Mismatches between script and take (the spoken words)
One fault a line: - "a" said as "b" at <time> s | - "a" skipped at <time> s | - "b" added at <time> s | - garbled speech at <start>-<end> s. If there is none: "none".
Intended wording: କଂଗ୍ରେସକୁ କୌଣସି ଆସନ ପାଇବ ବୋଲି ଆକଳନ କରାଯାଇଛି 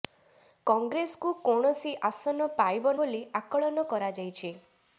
none